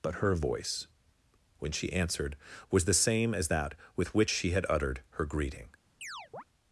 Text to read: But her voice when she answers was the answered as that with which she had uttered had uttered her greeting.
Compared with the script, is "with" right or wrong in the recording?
right